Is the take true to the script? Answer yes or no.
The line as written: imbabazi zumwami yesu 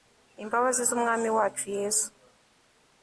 no